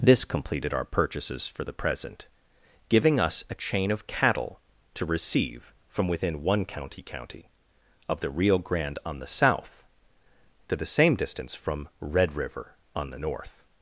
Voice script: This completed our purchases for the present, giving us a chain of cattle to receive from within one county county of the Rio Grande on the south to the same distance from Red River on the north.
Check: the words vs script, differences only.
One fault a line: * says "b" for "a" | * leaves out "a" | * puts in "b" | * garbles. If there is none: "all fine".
all fine